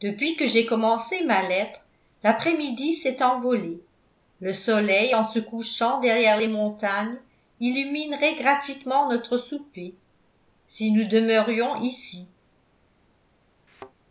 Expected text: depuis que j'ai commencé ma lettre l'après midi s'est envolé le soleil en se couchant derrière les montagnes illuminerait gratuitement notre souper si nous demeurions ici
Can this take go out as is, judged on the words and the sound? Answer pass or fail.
fail